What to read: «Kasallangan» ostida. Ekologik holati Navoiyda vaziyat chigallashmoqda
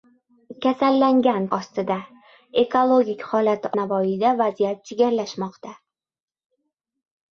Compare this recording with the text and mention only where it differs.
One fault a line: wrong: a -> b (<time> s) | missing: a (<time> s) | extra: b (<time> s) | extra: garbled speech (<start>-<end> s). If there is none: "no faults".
no faults